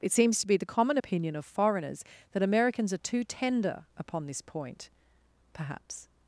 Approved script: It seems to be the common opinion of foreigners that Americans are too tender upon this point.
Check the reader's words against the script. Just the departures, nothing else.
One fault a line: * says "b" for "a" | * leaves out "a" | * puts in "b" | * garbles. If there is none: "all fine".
* puts in "Perhaps"